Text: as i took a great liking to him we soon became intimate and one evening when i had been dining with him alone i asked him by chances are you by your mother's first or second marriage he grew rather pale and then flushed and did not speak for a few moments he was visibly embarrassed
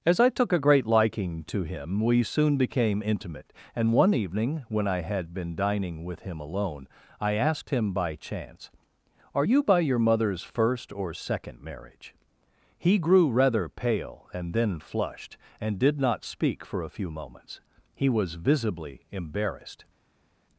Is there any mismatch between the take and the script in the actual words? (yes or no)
yes